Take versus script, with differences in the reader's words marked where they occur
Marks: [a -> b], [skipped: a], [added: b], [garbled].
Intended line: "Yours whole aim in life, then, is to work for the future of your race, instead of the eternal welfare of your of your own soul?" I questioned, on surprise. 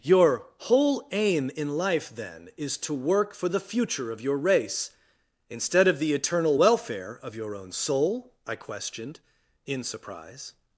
["Yours -> Your] whole aim in life, then, is to work for the future of your race, instead of the eternal welfare of your [skipped: of your] own soul?" I questioned, [on -> in] surprise.